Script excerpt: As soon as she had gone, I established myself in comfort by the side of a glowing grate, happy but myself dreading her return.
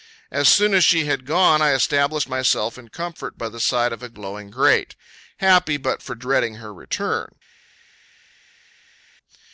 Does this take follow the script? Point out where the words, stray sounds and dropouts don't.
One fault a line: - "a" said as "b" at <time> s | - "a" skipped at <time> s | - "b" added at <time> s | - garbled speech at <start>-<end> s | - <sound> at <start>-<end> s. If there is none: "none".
- "myself" said as "for" at 6.0 s